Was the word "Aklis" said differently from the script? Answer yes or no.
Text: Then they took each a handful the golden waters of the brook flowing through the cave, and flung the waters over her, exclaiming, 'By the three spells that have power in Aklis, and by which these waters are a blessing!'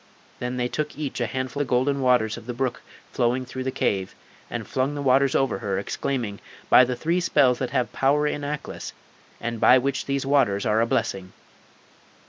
no